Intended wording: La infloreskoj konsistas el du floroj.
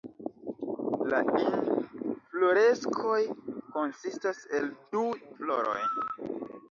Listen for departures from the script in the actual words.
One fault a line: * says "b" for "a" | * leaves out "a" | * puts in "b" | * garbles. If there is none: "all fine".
all fine